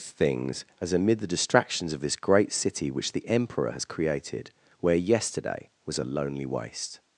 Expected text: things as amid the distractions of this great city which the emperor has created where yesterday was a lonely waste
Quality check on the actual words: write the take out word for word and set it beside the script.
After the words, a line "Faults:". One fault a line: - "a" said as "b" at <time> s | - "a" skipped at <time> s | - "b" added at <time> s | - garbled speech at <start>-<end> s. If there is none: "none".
things as amid the distractions of this great city which the emperor has created where yesterday was a lonely waste
Faults:
none